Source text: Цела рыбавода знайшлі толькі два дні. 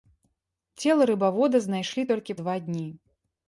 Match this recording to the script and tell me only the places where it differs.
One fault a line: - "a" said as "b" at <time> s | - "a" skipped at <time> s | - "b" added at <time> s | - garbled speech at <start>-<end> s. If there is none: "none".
none